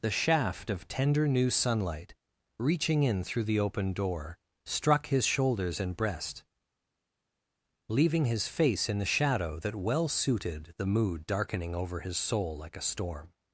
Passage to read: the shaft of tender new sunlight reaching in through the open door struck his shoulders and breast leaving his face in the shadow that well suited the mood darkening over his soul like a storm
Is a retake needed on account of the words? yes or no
no